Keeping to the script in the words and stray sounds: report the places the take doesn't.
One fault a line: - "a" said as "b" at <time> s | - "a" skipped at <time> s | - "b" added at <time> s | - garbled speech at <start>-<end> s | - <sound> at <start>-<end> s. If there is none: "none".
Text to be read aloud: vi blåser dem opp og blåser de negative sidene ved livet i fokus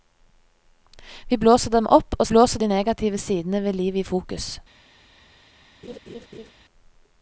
- laugh at 5.8-6.5 s